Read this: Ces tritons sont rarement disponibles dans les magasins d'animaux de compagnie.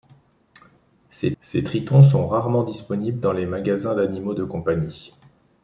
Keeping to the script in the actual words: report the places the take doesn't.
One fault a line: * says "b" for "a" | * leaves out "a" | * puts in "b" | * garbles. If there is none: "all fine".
* puts in "ces"